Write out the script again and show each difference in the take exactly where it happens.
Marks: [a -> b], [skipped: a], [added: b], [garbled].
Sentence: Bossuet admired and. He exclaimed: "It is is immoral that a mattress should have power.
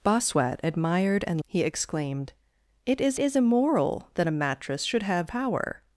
Bossuet admired and. He exclaimed: "It is is immoral that a mattress should have power.